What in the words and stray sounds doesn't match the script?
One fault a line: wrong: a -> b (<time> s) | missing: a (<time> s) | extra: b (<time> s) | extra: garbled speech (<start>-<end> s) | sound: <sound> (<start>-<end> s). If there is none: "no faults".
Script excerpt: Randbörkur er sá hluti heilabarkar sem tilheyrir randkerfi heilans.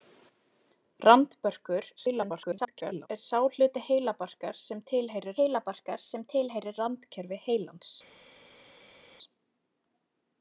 extra: garbled speech (2.0-3.1 s)
extra: heilabarkar sem tilheyrir (5.4 s)